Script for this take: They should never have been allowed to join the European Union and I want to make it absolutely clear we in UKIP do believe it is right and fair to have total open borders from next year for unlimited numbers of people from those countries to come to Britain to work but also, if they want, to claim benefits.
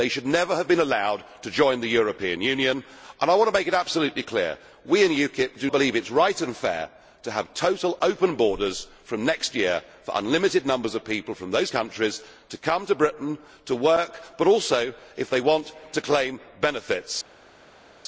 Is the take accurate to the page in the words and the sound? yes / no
yes